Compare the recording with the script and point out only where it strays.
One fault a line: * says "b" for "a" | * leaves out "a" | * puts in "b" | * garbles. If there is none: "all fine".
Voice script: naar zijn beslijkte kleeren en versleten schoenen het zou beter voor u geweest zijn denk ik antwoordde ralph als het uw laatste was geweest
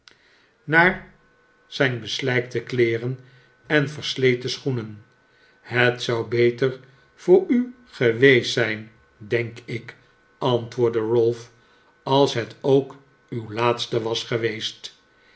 * puts in "ook"